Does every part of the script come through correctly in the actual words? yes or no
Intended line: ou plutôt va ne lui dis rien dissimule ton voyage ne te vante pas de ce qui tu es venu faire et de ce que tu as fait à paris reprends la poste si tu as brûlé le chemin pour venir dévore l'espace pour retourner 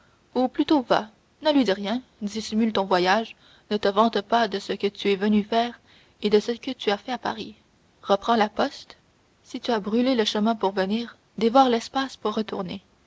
no